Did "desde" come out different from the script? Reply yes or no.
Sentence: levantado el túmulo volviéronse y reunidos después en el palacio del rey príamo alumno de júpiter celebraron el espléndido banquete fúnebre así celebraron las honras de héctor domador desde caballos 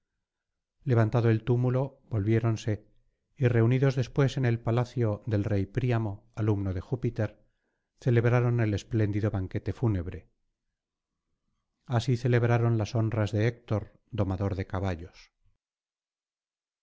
yes